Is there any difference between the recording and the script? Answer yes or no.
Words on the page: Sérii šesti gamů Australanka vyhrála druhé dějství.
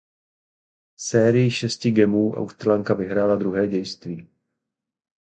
no